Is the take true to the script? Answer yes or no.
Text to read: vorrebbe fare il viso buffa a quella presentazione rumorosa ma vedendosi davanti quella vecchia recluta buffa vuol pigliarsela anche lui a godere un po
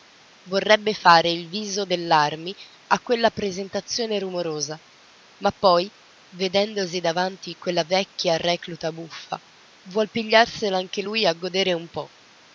no